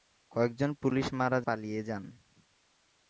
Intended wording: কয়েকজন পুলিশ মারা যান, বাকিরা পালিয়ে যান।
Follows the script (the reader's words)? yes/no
no